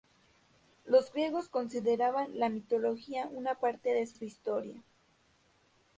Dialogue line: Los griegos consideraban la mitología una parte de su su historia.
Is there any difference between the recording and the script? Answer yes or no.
no